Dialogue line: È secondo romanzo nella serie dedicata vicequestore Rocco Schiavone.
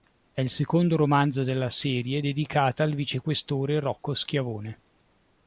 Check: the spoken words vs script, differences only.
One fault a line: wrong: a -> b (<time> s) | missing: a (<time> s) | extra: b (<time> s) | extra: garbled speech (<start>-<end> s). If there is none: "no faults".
extra: il (0.4 s)
wrong: nella -> della (1.4 s)
extra: al (2.8 s)